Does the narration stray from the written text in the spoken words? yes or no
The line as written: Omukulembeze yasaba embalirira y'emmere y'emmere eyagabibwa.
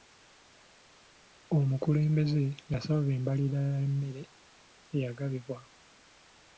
yes